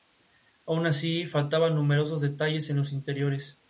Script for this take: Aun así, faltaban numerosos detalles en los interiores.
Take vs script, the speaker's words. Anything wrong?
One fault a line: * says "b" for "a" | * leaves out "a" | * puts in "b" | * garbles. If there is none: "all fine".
all fine